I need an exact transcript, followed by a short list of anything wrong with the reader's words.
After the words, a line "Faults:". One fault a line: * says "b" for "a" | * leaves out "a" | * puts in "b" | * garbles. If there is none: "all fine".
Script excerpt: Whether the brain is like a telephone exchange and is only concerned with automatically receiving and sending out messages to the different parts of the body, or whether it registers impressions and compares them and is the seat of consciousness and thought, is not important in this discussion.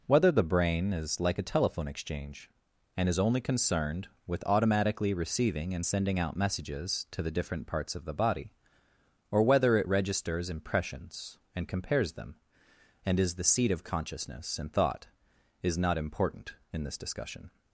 Whether the brain is like a telephone exchange and is only concerned with automatically receiving and sending out messages to the different parts of the body, or whether it registers impressions and compares them and is the seat of consciousness and thought, is not important in this discussion.
Faults:
all fine